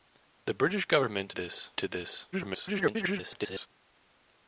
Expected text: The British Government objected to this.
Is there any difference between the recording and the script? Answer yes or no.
yes